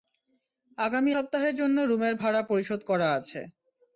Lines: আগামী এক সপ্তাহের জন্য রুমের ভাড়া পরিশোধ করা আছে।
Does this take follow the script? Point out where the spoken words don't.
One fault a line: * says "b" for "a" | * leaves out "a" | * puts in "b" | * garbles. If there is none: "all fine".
* leaves out "এক"